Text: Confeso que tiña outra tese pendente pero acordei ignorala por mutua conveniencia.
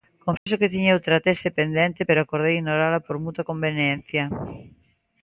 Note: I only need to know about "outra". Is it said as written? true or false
true